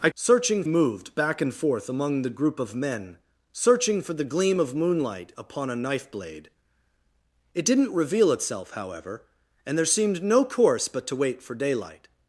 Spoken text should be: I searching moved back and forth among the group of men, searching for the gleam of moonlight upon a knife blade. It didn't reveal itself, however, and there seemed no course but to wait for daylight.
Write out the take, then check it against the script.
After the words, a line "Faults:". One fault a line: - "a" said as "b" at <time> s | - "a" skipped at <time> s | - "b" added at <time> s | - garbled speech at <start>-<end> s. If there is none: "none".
I searching moved back and forth among the group of men, searching for the gleam of moonlight upon a knife blade. It didn't reveal itself, however, and there seemed no course but to wait for daylight.
Faults:
none